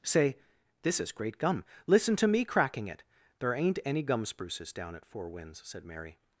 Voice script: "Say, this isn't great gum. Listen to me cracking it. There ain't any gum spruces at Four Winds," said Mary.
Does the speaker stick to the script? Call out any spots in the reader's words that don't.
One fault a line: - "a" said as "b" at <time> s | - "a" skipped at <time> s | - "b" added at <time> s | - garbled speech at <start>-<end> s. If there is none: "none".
- "isn't" said as "is" at 1.0 s
- "down" added at 4.7 s